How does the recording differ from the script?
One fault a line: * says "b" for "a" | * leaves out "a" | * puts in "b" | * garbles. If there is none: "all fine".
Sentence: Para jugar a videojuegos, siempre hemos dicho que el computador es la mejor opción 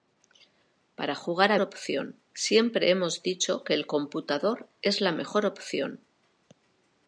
* says "opción" for "videojuegos"